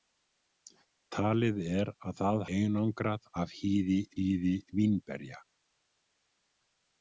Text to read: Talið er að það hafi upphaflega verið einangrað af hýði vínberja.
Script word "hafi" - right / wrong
wrong